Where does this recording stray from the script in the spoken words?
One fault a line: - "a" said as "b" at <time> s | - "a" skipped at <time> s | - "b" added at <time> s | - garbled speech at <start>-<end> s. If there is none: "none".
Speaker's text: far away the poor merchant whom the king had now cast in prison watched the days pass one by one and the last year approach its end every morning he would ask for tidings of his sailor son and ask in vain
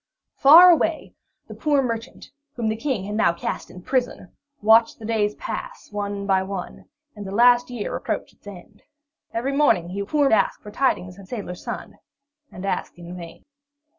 - "would" said as "poor" at 10.0 s
- "his" skipped at 11.3 s